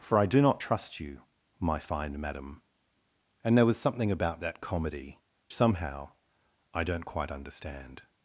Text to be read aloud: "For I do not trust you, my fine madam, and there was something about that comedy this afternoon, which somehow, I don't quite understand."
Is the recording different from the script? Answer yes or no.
yes